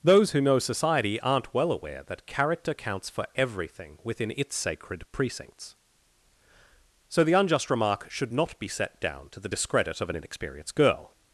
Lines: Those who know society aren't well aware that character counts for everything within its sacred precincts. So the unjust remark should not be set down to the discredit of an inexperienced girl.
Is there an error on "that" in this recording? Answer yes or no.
no